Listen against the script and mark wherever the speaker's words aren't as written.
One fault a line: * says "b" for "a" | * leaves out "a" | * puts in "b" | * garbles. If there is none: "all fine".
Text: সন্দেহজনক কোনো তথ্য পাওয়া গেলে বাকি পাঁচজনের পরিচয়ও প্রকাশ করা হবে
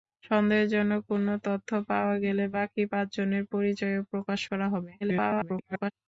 * garbles